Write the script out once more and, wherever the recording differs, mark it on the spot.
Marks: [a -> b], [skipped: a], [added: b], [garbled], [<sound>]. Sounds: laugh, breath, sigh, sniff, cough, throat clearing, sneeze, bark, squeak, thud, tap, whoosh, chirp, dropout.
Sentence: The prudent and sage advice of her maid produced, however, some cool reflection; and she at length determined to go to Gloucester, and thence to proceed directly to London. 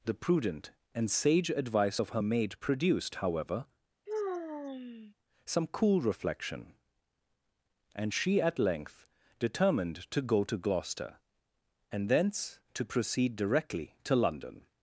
The prudent and sage advice of her maid produced, however, [sigh] some cool reflection; and she at length determined to go to Gloucester, and thence to proceed directly to London.